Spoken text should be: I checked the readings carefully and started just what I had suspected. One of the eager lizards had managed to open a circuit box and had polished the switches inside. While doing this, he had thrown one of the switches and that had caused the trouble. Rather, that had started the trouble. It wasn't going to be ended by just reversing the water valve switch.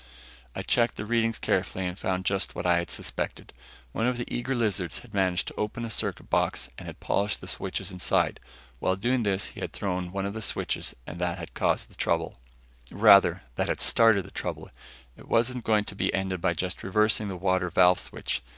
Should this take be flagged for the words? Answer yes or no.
yes